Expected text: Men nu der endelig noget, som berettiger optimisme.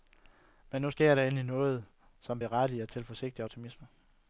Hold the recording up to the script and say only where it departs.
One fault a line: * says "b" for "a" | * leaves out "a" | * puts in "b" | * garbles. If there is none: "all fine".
* puts in "sker"
* puts in "til forsigtig"